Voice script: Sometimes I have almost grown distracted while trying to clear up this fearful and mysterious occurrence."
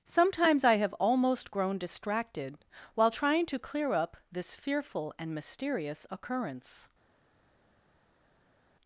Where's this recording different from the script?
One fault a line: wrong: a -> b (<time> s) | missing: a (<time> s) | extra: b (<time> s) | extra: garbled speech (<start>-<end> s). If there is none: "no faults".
no faults